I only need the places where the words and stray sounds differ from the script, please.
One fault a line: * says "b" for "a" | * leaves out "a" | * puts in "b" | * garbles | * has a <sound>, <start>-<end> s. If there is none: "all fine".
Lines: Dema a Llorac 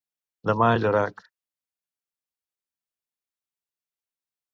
all fine